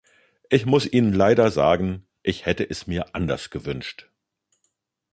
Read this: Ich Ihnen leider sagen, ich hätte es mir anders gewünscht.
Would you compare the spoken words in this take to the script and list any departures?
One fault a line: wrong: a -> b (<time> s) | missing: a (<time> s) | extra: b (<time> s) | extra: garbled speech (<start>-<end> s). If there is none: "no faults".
extra: muss (0.7 s)